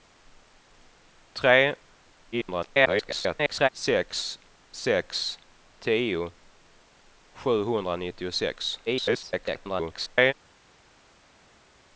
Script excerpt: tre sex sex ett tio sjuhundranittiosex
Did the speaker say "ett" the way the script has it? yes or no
no